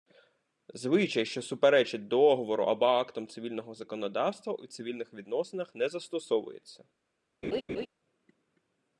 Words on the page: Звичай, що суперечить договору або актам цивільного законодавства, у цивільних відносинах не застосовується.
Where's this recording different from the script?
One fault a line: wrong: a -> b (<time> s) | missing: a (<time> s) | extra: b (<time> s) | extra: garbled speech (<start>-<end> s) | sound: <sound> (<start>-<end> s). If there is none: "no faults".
sound: laugh (7.4-7.9 s)